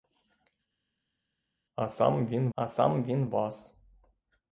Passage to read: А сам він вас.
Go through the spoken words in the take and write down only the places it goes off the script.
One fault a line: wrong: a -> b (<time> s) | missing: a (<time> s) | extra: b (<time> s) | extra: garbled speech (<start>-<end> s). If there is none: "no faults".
extra: а сам він (2.5 s)